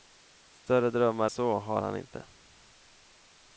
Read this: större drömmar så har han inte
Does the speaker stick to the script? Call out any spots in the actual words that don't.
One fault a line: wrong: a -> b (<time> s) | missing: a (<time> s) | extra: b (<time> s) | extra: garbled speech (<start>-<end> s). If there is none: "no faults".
no faults